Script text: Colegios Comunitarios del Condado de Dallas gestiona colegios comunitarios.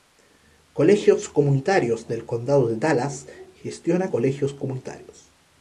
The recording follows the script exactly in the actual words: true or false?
true